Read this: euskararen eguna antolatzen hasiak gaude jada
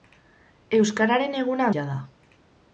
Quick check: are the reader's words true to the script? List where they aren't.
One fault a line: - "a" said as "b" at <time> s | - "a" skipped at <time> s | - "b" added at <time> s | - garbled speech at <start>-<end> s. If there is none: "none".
- "antolatzen hasiak gaude" skipped at 1.7 s